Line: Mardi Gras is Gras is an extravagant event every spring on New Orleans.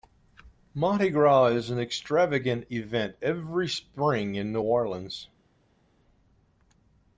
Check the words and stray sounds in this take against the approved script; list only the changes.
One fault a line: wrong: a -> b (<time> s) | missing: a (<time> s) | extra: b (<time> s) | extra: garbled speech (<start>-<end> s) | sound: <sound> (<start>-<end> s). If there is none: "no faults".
missing: Gras is (1.7 s)
wrong: on -> in (4.3 s)